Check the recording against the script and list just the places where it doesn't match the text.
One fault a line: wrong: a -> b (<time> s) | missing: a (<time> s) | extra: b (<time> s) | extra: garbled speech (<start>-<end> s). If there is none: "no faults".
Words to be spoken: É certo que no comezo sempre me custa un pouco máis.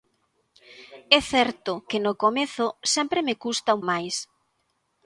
missing: pouco (3.8 s)